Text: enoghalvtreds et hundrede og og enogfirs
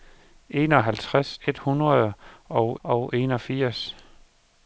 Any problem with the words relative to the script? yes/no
no